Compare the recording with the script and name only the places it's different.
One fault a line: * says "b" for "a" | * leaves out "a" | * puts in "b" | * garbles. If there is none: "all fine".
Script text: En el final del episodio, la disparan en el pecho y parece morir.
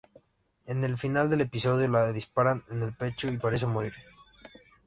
all fine